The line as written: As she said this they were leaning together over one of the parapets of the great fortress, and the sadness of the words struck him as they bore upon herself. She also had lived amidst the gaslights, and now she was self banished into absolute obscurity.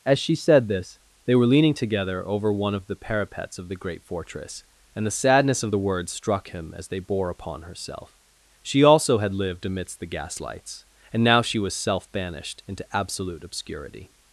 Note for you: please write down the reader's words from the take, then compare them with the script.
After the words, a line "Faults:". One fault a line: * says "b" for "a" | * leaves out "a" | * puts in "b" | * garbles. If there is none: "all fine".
As she said this they were leaning together over one of the parapets of the great fortress, and the sadness of the words struck him as they bore upon herself. She also had lived amidst the gaslights, and now she was self banished into absolute obscurity.
Faults:
all fine